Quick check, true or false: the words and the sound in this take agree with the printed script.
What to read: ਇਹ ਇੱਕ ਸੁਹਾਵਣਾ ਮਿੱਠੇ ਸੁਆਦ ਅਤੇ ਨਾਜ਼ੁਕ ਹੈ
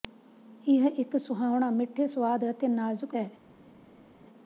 true